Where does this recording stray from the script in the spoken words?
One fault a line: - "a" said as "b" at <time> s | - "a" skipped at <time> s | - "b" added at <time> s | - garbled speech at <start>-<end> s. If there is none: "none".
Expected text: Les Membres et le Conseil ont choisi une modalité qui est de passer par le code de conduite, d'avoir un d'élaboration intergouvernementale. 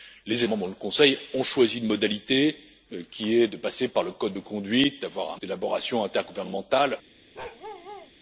none